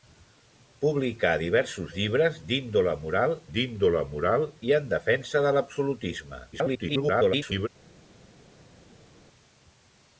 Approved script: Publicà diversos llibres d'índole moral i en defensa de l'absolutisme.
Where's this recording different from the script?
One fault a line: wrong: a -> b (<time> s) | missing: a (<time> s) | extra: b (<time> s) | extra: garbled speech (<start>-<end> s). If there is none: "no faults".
extra: d'índole moral (3.5 s)
extra: garbled speech (6.5-7.7 s)